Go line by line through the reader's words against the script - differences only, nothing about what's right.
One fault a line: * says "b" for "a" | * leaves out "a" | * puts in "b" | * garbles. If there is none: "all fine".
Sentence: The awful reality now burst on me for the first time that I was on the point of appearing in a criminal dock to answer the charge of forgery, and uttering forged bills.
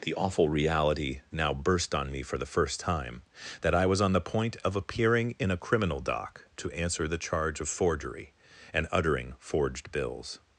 all fine